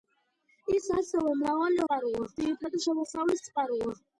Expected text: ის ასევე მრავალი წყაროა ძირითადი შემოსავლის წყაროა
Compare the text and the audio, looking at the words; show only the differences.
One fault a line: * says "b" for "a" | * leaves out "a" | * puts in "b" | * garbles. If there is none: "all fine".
all fine